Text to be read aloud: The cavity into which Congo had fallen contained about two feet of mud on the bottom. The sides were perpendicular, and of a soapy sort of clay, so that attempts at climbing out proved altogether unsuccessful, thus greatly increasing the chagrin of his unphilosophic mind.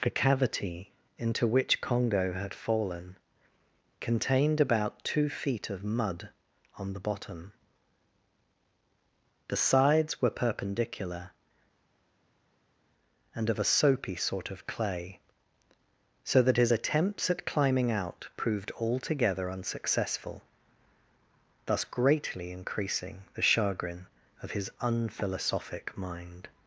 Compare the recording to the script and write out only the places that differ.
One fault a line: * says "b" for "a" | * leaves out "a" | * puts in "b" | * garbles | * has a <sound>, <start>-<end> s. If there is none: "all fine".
* puts in "his"